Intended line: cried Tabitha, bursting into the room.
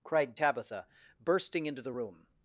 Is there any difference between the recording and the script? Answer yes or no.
no